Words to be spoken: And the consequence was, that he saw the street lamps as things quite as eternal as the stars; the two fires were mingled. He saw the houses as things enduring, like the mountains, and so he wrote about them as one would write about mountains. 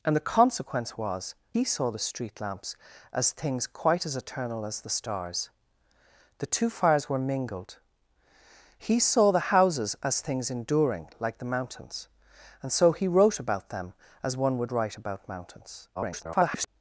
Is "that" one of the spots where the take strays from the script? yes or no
yes